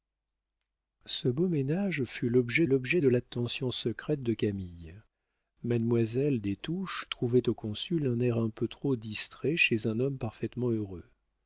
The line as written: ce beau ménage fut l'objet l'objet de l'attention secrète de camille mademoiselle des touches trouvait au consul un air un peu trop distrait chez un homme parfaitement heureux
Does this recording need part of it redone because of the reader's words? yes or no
no